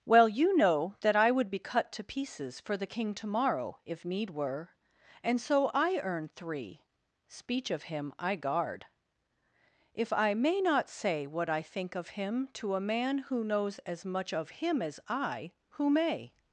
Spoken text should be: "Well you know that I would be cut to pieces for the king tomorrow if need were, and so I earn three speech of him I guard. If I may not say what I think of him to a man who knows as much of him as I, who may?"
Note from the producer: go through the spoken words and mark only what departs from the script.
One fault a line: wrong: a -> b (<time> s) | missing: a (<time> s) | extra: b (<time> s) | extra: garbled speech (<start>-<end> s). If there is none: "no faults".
no faults